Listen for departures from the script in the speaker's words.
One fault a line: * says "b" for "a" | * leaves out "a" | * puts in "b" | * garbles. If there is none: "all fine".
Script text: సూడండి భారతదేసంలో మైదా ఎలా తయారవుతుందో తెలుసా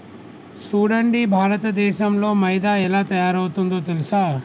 all fine